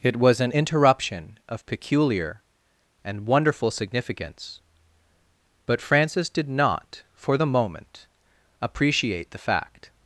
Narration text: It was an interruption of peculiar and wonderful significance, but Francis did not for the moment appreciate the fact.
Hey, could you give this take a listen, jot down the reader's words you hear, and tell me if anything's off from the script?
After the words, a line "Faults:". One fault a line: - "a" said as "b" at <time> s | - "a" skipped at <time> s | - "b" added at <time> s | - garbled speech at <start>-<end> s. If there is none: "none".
It was an interruption of peculiar and wonderful significance, but Francis did not for the moment appreciate the fact.
Faults:
none